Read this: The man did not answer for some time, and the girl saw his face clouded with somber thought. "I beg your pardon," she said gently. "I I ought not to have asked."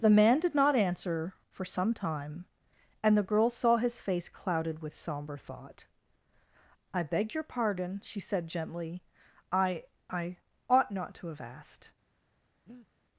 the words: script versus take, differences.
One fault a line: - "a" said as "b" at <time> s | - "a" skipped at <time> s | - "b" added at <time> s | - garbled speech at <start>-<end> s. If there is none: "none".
none